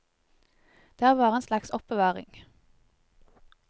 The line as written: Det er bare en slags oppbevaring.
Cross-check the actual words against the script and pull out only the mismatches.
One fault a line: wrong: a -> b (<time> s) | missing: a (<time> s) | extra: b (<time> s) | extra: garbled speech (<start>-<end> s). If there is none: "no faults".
no faults